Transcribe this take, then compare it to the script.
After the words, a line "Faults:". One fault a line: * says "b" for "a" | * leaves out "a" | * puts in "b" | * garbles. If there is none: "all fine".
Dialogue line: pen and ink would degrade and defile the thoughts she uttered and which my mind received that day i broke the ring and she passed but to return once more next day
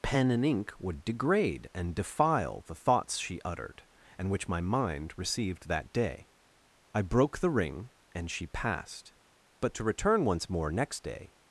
pen and ink would degrade and defile the thoughts she uttered and which my mind received that day i broke the ring and she passed but to return once more next day
Faults:
all fine